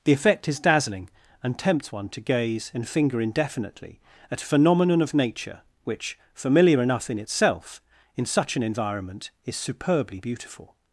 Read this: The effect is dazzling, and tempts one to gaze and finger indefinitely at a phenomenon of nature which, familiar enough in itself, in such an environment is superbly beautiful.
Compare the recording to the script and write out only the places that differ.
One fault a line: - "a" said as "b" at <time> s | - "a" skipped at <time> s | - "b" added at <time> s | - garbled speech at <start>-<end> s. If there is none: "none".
none